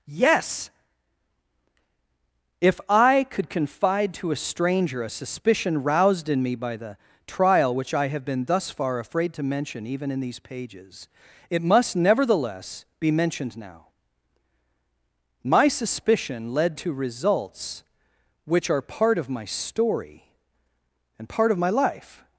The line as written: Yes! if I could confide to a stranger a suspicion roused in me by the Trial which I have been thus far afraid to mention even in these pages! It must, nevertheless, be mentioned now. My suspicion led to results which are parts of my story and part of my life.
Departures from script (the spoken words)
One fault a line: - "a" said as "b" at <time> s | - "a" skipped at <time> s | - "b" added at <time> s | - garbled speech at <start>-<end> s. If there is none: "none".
- "parts" said as "part" at 18.8 s